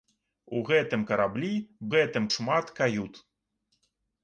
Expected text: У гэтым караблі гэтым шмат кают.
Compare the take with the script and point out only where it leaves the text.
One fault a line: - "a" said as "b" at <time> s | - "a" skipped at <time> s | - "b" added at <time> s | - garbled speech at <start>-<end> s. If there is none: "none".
none